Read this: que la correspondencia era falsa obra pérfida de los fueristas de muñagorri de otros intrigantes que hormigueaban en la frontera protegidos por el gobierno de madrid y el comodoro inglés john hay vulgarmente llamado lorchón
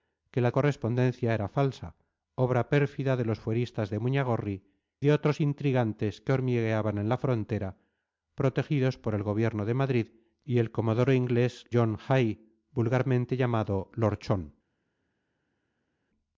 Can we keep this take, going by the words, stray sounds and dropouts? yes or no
yes